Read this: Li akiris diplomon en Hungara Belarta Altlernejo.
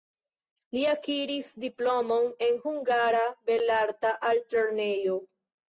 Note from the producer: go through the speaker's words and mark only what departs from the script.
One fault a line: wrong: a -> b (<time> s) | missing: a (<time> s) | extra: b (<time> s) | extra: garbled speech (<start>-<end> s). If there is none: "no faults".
no faults